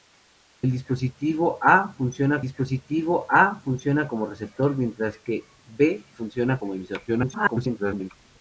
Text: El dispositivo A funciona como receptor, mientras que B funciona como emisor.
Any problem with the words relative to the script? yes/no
yes